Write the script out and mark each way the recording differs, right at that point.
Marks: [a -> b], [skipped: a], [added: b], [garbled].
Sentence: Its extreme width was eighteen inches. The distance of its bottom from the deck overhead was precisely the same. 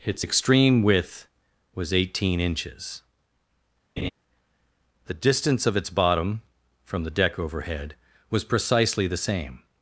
Its extreme width was eighteen inches. The distance of its bottom from the deck overhead was precisely the same.